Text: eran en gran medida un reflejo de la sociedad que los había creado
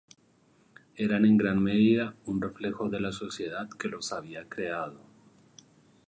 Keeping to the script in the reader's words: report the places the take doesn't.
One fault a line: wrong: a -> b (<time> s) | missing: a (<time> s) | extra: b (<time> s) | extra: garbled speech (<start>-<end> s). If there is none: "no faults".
no faults